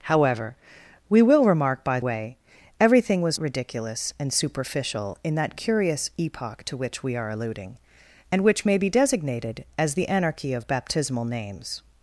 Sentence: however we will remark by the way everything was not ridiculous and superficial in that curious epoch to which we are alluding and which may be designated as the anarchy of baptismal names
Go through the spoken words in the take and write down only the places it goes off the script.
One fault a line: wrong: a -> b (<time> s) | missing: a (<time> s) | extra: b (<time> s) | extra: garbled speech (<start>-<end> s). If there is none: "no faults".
missing: the (2.0 s)
missing: not (3.4 s)